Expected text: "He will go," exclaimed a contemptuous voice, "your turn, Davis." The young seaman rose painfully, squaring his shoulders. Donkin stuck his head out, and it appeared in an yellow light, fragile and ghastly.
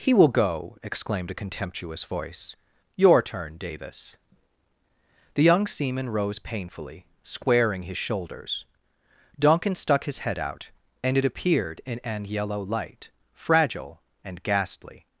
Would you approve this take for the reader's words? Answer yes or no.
yes